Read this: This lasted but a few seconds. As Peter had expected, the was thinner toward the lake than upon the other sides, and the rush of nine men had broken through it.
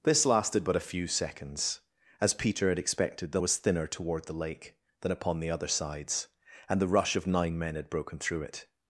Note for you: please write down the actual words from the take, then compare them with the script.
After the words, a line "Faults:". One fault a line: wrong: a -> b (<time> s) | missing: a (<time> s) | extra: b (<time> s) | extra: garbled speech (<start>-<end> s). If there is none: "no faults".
This lasted but a few seconds. As Peter had expected, the was thinner toward the lake than upon the other sides, and the rush of nine men had broken through it.
Faults:
no faults